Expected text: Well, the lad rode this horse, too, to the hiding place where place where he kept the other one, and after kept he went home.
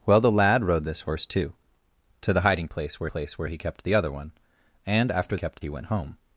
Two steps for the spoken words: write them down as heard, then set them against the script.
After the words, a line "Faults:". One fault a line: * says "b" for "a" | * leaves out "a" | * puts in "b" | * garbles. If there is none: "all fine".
Well, the lad rode this horse, too, to the hiding place where place where he kept the other one, and after kept he went home.
Faults:
all fine